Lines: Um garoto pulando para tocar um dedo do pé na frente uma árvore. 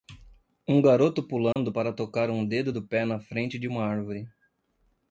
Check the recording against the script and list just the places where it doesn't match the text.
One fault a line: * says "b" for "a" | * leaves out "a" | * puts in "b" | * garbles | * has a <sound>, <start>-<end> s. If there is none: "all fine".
* has a dropout, 1.5-1.6 s
* puts in "de"